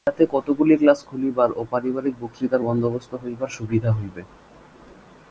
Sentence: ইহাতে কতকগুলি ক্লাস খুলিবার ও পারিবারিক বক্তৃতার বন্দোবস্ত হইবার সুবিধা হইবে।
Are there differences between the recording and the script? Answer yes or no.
no